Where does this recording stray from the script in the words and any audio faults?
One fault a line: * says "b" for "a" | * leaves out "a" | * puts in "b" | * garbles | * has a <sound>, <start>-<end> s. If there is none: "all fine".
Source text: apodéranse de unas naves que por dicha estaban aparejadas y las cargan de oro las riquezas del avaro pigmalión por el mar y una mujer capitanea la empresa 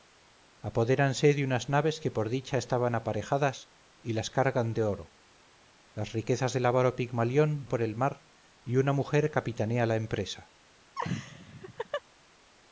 * has a laugh, 10.9-12.0 s